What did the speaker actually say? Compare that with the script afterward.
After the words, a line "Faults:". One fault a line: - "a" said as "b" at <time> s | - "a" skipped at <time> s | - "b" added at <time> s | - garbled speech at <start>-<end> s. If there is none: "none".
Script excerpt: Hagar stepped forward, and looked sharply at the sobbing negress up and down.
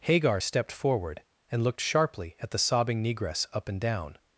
Hagar stepped forward, and looked sharply at the sobbing negress up and down.
Faults:
none